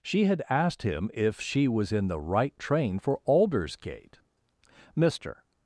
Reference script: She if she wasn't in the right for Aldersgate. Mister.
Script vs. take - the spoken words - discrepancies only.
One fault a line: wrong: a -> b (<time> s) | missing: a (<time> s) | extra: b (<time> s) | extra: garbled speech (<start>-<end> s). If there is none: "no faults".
extra: had asked him (0.2 s)
wrong: wasn't -> was (1.7 s)
extra: train (2.6 s)